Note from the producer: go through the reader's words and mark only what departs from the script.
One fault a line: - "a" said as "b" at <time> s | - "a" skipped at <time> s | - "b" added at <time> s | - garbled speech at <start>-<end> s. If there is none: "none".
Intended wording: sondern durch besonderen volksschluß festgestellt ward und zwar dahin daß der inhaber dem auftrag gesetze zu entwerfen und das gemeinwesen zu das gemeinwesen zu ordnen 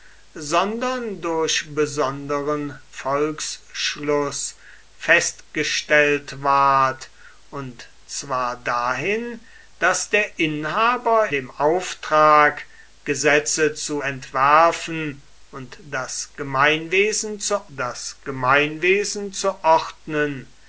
none